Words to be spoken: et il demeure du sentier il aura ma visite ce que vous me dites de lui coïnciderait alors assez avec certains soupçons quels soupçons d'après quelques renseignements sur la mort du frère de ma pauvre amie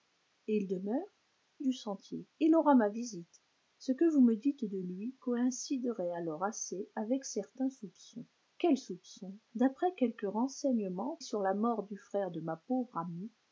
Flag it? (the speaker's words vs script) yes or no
no